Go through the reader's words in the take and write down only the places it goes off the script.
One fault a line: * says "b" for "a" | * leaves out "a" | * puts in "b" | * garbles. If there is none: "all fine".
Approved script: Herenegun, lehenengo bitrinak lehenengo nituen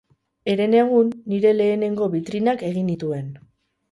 * puts in "nire"
* says "egin" for "lehenengo"